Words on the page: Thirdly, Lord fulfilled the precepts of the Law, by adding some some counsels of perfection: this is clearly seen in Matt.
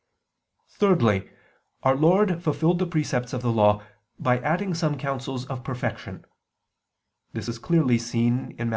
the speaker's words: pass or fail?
fail